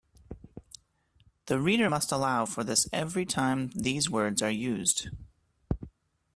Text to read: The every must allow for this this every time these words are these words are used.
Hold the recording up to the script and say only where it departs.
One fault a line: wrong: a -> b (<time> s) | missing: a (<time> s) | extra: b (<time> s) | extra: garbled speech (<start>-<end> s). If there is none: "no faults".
wrong: every -> reader (1.6 s)
missing: this (2.9 s)
missing: these words are (4.5 s)